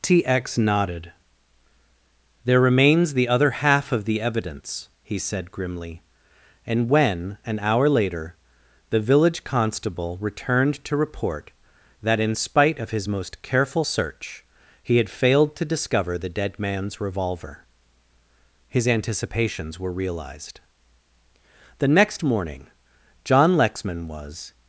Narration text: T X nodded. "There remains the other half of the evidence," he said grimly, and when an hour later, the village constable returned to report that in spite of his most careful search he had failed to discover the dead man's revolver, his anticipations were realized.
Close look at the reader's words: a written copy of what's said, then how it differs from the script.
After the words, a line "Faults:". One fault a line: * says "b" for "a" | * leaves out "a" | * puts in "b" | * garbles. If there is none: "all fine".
T X nodded. "There remains the other half of the evidence," he said grimly, and when an hour later, the village constable returned to report that in spite of his most careful search he had failed to discover the dead man's revolver, his anticipations were realized. The next morning John Lexman was
Faults:
* puts in "The next morning John Lexman was"